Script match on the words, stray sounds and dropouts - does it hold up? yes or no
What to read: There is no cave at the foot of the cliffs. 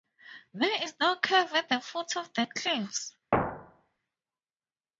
no